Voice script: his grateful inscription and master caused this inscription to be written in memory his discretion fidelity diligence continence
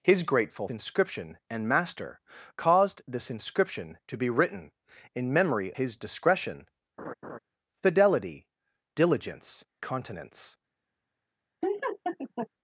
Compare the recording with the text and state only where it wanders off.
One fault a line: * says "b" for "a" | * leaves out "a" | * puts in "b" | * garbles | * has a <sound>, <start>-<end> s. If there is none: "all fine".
* has a laugh, 7.0-7.4 s
* has a laugh, 11.6-12.5 s